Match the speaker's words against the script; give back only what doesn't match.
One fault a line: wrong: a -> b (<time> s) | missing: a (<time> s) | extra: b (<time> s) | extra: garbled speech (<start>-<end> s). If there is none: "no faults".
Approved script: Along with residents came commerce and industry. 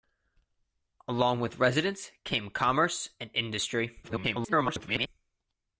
extra: garbled speech (4.0-5.1 s)